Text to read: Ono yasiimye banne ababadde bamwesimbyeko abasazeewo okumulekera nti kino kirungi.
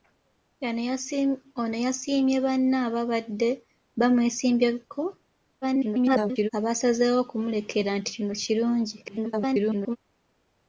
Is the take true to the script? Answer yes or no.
no